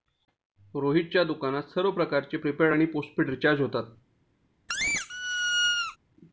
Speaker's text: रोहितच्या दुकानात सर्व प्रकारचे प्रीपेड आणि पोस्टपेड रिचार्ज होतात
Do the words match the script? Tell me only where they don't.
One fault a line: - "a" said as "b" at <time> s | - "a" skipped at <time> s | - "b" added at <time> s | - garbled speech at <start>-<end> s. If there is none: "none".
none